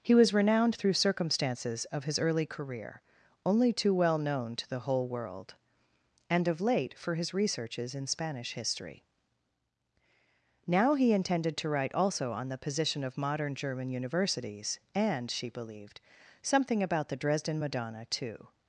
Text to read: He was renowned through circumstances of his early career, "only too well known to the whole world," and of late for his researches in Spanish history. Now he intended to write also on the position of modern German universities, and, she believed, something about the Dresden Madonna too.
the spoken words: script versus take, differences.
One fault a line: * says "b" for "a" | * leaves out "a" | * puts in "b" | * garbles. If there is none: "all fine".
all fine